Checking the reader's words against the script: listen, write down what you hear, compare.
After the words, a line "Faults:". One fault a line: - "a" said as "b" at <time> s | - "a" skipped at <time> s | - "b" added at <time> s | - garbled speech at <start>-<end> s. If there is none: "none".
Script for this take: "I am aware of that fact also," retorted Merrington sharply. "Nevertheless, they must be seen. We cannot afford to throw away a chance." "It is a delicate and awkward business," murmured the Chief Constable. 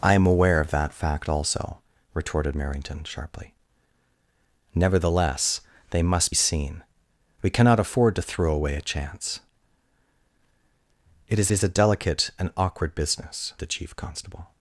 "I am aware of that fact also," retorted Merrington sharply. "Nevertheless, they must seen. We cannot afford to throw away a chance." "It is is a delicate and awkward business," the Chief Constable.
Faults:
- "be" skipped at 6.3 s
- "is" added at 11.5 s
- "murmured" skipped at 13.5 s